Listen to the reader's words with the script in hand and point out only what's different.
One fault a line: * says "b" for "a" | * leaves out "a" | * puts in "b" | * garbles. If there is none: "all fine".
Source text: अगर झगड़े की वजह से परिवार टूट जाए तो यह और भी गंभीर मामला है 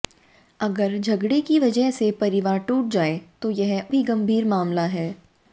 * leaves out "और"